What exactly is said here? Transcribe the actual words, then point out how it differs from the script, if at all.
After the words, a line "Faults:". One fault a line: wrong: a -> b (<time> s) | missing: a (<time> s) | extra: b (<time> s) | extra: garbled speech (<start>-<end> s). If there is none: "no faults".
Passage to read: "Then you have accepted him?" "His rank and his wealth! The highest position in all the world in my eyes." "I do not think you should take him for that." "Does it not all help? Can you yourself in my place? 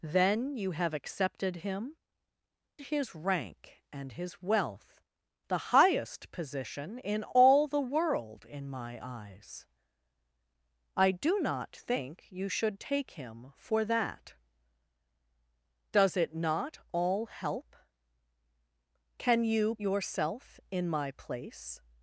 "Then you have accepted him?" "His rank and his wealth! The highest position in all the world in my eyes." "I do not think you should take him for that." "Does it not all help? Can you yourself in my place?
Faults:
no faults